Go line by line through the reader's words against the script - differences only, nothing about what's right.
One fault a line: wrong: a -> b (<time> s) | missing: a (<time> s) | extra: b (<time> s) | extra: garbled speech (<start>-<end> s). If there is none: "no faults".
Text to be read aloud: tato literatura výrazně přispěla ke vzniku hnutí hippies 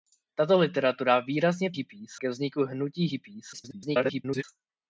wrong: přispěla -> hippies (1.7 s)
extra: garbled speech (3.5-4.4 s)